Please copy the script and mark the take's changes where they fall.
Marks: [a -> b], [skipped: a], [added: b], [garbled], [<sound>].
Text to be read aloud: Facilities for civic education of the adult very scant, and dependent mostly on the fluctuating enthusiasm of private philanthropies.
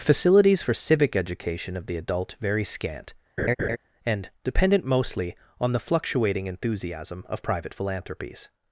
Facilities for civic education of the adult very scant, [laugh] and dependent mostly on the fluctuating enthusiasm of private philanthropies.